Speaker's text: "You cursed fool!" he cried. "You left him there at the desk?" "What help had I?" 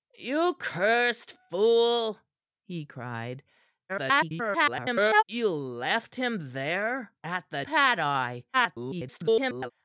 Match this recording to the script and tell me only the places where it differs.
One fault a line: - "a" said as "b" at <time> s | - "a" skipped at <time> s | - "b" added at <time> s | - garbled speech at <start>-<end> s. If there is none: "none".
- garbled speech at 3.9-5.2 s
- "desk What help" skipped at 7.7 s
- garbled speech at 8.5-9.7 s